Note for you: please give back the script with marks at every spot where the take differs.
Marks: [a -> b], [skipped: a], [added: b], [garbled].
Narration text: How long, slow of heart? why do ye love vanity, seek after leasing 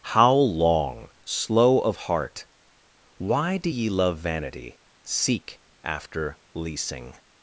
How long, slow of heart? why do ye love vanity, seek after leasing